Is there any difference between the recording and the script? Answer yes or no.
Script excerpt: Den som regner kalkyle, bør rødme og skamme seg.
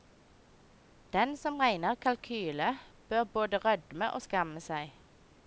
yes